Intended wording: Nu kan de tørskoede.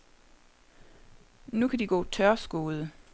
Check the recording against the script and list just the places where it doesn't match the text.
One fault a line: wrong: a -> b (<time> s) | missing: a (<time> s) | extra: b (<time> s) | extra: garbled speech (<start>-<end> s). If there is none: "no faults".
extra: gå (1.8 s)